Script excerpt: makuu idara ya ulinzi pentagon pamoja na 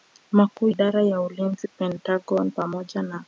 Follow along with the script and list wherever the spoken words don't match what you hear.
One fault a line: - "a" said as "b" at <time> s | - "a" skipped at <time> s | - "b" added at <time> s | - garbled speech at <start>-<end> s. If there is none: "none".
none